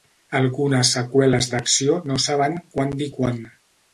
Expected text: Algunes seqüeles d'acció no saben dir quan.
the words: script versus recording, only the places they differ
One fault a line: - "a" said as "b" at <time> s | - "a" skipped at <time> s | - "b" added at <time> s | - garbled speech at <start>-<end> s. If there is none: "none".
- "quan" added at 2.7 s